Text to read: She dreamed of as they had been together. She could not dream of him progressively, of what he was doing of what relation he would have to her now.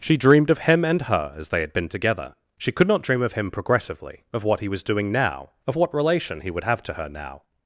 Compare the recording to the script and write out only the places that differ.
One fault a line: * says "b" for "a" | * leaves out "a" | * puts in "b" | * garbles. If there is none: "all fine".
* puts in "him and her"
* puts in "now"